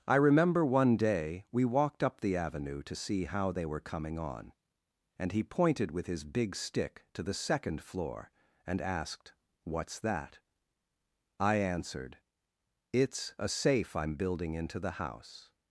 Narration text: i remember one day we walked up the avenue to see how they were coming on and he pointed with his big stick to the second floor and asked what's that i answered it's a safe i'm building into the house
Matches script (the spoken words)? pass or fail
pass